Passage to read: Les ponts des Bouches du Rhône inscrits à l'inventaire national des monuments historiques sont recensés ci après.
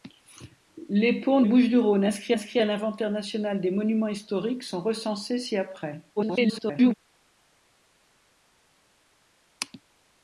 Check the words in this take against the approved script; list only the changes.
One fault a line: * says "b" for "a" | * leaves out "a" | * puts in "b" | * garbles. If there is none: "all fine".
* leaves out "des"
* puts in "inscrits"
* garbles